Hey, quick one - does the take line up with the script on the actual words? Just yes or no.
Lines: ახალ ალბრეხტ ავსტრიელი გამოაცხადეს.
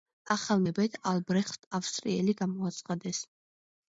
no